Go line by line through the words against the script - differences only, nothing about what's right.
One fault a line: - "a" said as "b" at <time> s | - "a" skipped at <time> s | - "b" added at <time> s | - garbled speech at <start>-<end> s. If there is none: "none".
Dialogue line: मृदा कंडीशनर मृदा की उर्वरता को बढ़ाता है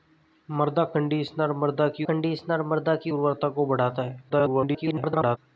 - "कंडीशनर मृदा की" added at 2.1 s
- garbled speech at 4.3-5.4 s